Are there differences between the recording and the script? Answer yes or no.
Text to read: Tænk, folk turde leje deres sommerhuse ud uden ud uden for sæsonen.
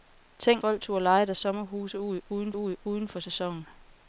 no